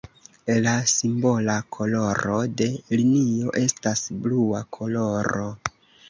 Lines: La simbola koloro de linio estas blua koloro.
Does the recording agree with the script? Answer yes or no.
yes